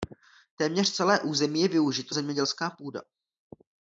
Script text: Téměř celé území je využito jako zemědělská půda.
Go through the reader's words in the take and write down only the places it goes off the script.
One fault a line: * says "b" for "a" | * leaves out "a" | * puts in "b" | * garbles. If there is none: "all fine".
* leaves out "jako"